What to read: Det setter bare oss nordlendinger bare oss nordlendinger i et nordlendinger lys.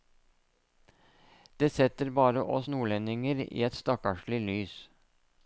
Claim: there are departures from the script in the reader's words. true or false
true